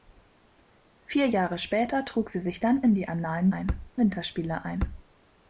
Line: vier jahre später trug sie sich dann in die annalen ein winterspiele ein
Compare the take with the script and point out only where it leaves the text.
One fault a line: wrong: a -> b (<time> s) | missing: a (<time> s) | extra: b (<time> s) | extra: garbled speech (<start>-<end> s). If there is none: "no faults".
no faults